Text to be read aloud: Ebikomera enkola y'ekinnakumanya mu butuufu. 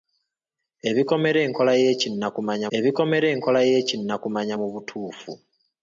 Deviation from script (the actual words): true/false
true